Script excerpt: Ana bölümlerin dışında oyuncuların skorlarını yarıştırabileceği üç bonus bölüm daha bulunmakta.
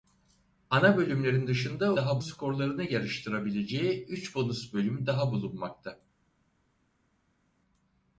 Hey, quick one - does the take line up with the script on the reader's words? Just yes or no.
no